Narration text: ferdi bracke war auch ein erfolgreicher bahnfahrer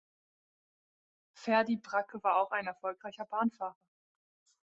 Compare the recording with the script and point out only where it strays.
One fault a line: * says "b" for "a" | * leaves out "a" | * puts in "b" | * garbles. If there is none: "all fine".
all fine